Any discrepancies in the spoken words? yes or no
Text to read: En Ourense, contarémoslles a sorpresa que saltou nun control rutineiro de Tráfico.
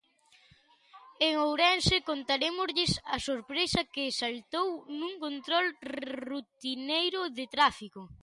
no